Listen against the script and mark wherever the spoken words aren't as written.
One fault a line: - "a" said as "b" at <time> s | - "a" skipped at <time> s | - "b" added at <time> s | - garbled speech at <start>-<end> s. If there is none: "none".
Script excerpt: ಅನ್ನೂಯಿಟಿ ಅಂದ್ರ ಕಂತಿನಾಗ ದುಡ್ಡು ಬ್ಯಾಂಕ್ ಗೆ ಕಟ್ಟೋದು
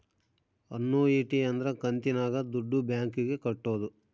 none